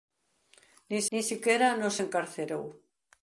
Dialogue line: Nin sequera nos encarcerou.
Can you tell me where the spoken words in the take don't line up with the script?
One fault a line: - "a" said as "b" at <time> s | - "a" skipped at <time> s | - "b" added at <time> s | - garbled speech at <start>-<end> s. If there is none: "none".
- "nin" added at 1.1 s